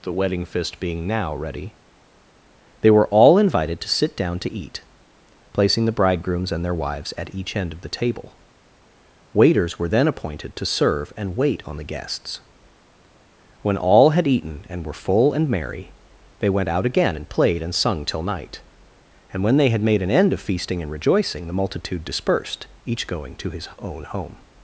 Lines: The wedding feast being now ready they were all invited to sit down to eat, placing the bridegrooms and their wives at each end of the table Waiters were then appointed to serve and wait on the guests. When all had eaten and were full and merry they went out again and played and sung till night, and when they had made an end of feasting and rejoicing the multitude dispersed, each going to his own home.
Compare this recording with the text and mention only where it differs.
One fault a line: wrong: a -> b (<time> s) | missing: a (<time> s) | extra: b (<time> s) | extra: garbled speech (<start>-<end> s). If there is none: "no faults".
wrong: feast -> fist (0.5 s)